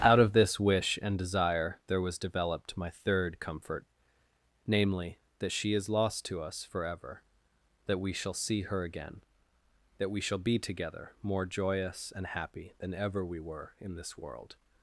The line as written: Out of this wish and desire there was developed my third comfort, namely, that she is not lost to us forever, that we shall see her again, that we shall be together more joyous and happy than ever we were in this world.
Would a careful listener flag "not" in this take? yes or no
yes